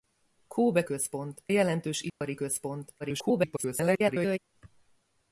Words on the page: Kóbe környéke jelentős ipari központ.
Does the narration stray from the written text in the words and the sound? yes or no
yes